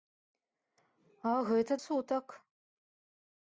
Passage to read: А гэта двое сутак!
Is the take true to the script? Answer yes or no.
no